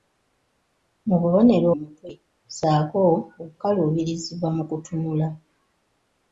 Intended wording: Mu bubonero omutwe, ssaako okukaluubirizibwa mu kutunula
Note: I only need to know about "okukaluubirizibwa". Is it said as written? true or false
true